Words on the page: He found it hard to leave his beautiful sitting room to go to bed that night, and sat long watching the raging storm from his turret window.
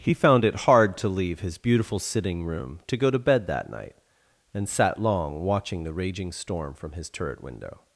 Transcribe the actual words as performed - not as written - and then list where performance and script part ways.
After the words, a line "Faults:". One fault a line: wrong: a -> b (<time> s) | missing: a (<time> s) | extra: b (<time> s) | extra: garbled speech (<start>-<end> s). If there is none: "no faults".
He found it hard to leave his beautiful sitting room to go to bed that night, and sat long watching the raging storm from his turret window.
Faults:
no faults